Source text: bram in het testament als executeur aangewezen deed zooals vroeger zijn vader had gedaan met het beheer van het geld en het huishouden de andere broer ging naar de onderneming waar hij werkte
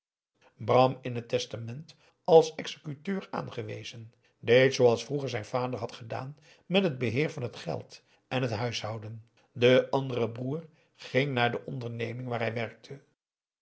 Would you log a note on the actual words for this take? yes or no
no